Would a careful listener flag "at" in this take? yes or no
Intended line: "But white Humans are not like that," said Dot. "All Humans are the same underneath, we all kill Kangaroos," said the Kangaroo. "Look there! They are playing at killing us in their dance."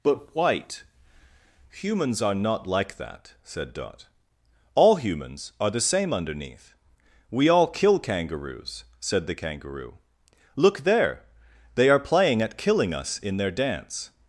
no